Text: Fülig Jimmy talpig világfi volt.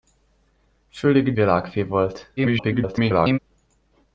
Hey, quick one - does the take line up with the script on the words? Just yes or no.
no